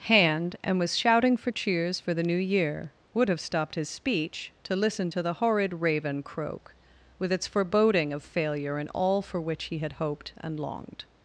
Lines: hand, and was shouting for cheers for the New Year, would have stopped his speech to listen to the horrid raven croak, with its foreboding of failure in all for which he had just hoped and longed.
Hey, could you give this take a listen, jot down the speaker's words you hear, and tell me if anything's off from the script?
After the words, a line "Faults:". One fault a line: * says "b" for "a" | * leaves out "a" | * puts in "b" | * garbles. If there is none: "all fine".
hand, and was shouting for cheers for the New Year, would have stopped his speech to listen to the horrid raven croak, with its foreboding of failure in all for which he had hoped and longed.
Faults:
* leaves out "just"